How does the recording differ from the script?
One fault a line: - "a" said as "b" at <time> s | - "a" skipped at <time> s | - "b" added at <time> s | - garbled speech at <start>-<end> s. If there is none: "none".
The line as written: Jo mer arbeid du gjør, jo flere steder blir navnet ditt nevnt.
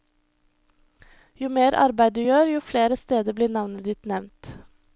none